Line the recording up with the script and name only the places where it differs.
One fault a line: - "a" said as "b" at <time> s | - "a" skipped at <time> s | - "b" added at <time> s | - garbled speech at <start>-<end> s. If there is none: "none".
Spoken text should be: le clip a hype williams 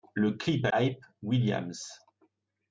none